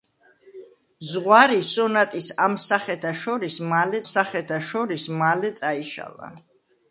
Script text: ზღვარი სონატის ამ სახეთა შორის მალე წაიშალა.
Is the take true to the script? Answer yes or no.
no